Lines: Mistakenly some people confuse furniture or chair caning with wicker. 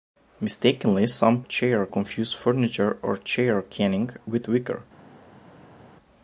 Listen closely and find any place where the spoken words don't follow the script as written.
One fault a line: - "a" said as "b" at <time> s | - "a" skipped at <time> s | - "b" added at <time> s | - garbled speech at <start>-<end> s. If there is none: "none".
- "people" said as "chair" at 1.4 s